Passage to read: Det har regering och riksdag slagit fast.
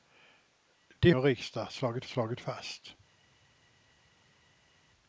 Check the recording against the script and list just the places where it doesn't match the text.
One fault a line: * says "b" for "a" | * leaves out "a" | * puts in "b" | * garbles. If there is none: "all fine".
* leaves out "har regering"
* puts in "slagit"